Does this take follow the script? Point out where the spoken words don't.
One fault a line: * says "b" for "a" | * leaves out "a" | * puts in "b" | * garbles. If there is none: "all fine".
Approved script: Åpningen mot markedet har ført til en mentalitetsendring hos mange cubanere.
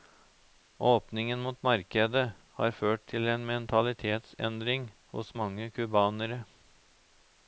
all fine